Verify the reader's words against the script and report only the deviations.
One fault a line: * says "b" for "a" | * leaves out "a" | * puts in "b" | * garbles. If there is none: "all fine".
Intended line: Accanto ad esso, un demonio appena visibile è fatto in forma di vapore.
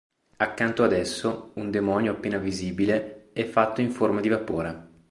all fine